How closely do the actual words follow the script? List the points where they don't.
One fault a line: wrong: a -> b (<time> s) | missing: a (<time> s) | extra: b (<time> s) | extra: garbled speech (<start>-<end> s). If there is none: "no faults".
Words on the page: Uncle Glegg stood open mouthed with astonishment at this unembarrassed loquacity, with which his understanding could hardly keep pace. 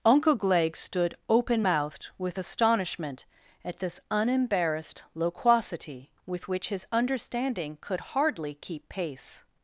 no faults